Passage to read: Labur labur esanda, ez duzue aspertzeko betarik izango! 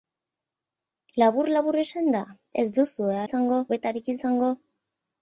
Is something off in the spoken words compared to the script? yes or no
yes